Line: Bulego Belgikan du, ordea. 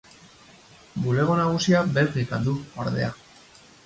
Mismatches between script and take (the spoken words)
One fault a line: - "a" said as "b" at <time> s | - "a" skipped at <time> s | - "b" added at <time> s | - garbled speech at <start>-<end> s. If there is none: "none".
- "nagusia" added at 1.4 s